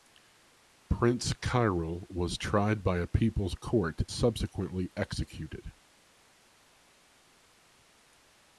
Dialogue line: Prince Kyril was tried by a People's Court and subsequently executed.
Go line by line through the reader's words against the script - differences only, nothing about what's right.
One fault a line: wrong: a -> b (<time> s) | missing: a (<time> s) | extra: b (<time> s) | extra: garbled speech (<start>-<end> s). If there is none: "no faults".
missing: and (4.0 s)